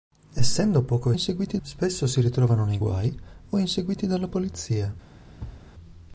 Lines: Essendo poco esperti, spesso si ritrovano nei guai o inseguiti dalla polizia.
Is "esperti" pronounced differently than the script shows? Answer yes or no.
yes